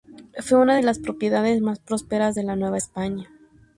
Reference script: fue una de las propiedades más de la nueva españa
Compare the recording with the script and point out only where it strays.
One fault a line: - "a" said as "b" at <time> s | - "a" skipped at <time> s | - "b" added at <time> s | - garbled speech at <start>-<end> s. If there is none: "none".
- "prósperas" added at 1.8 s